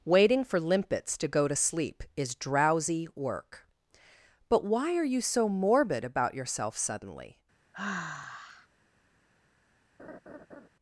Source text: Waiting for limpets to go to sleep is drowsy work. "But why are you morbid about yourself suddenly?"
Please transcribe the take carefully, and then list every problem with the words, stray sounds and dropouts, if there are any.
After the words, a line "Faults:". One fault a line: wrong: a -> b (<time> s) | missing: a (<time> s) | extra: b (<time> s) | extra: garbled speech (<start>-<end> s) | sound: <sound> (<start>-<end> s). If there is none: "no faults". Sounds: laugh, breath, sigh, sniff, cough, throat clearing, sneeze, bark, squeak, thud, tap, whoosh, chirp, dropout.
Waiting for limpets to go to sleep is drowsy work. "But why are you so morbid about yourself suddenly?"
Faults:
extra: so (5.2 s)
sound: sigh (7.7-8.7 s)
sound: laugh (10.0-10.7 s)